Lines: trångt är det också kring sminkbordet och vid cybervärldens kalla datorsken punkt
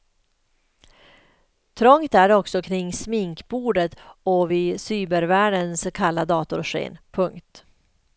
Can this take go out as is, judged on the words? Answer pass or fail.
pass